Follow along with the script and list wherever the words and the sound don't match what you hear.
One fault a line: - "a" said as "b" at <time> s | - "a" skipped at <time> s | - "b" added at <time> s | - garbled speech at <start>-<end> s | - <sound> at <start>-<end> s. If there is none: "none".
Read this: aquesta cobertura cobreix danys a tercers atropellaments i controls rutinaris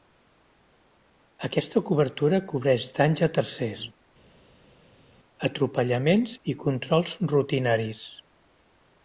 none